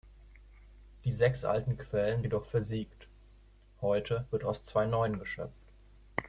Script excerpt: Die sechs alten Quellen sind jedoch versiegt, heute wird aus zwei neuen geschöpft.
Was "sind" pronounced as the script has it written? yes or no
no